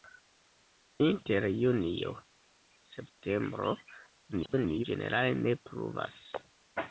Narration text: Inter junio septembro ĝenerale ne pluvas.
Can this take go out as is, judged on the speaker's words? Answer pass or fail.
fail